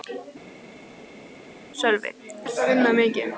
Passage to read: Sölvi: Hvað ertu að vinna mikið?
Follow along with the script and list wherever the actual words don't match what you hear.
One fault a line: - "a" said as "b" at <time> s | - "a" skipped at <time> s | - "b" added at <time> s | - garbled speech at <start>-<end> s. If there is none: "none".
- "Hvað" skipped at 2.1 s